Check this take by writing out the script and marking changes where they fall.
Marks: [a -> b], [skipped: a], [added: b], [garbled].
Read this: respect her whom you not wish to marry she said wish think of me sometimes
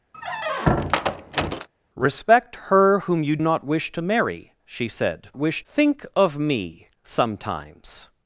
respect her whom you not wish to marry she said wish think of me sometimes